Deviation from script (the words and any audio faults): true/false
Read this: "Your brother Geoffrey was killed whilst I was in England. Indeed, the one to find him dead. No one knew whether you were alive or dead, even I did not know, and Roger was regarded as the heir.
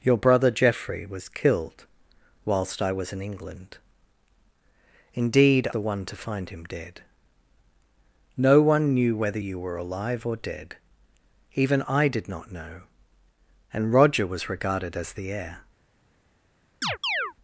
true